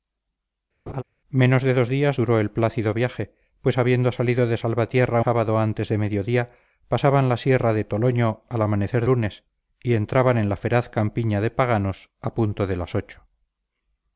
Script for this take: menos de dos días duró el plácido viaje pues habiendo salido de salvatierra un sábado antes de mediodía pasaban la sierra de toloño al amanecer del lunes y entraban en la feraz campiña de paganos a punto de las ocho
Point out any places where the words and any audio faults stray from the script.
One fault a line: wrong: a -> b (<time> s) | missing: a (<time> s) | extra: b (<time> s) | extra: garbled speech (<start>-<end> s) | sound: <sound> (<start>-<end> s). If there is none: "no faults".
sound: laugh (0.9-1.0 s)
missing: un (5.2 s)
missing: del (9.0 s)